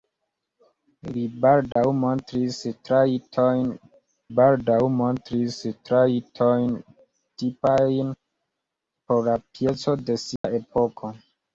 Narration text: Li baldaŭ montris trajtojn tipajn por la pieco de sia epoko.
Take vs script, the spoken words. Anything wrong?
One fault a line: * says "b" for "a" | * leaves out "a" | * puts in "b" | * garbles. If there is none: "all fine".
* puts in "baldaŭ montris trajtojn"